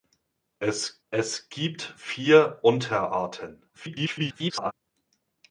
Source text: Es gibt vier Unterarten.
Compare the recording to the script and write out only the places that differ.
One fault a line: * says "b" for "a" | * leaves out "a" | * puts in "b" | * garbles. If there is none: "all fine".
* puts in "es"
* garbles